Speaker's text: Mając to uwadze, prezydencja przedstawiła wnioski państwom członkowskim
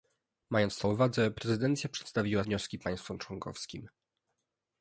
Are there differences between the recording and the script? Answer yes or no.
no